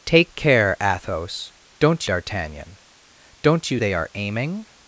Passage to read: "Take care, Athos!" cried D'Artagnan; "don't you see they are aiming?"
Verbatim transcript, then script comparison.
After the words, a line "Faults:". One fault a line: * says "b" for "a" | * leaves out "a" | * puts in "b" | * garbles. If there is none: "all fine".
"Take care, Athos!" don't D'Artagnan; "don't you they are aiming?"
Faults:
* says "don't" for "cried"
* leaves out "see"